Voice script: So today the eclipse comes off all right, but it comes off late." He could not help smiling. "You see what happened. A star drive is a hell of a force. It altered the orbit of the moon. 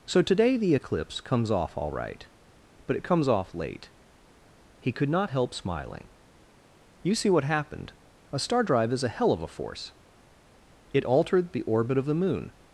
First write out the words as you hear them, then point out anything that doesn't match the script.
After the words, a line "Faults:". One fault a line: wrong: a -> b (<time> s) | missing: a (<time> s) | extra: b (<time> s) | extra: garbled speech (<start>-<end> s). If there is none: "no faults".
So today the eclipse comes off all right, but it comes off late." He could not help smiling. "You see what happened. A star drive is a hell of a force. It altered the orbit of the moon.
Faults:
no faults